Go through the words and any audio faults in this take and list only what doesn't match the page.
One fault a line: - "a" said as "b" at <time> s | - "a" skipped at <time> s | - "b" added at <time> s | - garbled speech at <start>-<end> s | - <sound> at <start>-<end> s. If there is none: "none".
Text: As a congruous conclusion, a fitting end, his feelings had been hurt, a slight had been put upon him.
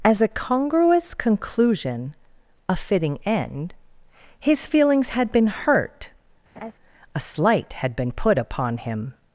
- laugh at 6.6-6.7 s